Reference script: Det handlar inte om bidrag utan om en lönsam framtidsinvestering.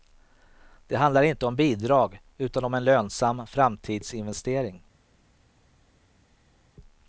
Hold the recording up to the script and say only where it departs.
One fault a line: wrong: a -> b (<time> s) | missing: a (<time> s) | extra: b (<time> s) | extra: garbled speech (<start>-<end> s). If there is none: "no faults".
no faults